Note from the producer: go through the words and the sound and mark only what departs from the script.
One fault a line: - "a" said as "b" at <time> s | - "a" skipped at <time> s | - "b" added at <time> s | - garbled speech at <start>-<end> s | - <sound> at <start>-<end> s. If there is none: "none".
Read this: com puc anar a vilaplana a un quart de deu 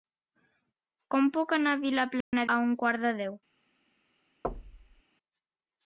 - dropout at 2.2-2.3 s
- thud at 4.4-5.0 s